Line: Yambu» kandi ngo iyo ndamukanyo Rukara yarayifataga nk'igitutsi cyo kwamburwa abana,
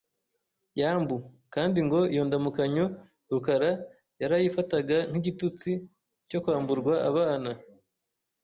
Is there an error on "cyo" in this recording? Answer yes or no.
no